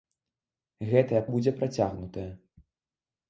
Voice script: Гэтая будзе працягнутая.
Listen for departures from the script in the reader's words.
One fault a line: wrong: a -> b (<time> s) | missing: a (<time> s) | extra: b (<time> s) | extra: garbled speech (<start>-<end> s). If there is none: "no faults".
no faults